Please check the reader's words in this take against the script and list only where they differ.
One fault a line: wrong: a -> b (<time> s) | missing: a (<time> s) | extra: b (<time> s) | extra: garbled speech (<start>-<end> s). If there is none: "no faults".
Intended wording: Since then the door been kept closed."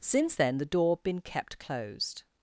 no faults